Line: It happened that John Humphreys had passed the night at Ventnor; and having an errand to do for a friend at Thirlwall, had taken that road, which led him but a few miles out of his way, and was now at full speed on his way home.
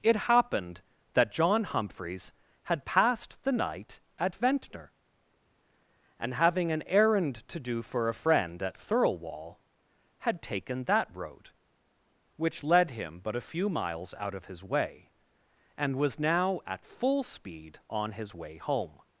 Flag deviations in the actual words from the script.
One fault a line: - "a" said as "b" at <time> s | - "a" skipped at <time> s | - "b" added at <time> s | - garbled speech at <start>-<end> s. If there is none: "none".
none